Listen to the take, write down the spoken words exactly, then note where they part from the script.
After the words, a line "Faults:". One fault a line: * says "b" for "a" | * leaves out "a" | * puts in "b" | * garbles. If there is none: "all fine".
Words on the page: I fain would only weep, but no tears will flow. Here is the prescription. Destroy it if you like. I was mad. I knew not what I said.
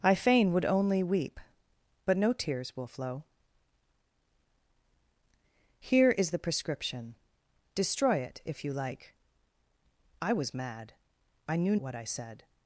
I fain would only weep, but no tears will flow. Here is the prescription. Destroy it if you like. I was mad. I knew what I said.
Faults:
* leaves out "not"